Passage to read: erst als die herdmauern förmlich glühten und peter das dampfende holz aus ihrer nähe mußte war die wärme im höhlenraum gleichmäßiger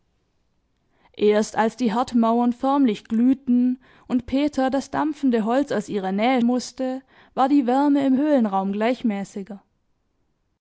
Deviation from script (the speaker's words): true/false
false